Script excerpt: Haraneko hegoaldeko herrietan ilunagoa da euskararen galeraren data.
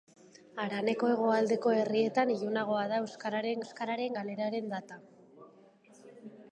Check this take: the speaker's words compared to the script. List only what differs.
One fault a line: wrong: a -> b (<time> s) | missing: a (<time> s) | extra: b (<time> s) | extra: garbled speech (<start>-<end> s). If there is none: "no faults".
extra: euskararen (3.6 s)